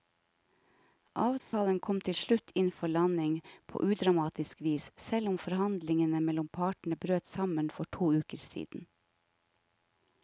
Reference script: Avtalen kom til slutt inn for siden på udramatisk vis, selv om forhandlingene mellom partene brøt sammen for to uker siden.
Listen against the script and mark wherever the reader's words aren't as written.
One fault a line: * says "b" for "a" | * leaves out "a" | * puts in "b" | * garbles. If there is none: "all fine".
* says "landing" for "siden"